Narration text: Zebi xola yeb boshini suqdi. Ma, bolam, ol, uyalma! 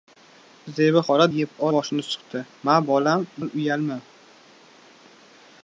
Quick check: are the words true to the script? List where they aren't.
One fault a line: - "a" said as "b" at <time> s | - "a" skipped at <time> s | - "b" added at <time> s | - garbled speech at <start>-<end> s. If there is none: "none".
none